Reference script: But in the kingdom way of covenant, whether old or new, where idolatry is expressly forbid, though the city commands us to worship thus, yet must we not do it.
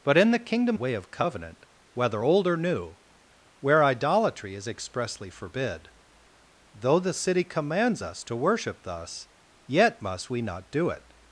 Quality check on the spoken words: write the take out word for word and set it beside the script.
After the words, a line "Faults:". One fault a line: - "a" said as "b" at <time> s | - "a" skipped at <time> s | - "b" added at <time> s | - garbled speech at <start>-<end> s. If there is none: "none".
But in the kingdom way of covenant, whether old or new, where idolatry is expressly forbid, though the city commands us to worship thus, yet must we not do it.
Faults:
none